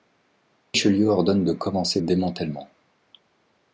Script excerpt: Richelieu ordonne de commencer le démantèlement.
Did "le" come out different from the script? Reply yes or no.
yes